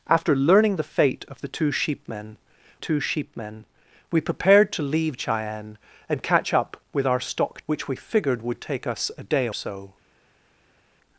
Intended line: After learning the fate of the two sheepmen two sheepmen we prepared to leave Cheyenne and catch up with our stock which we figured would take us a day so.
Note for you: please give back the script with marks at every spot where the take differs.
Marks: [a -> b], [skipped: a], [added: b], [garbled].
After learning the fate of the two sheepmen two sheepmen we prepared to leave Cheyenne and catch up with our stock which we figured would take us a day so.